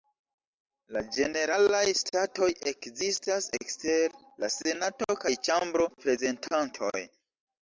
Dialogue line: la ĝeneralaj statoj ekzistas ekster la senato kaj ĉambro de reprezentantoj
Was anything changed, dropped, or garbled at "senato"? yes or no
no